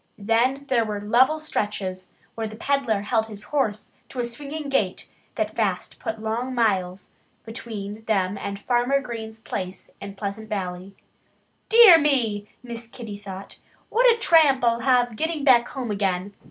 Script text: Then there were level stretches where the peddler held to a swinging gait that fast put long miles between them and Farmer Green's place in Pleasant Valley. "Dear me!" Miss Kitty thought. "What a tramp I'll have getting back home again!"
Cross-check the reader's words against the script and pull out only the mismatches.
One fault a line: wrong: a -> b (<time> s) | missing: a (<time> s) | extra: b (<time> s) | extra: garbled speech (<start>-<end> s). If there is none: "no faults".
extra: his horse (3.3 s)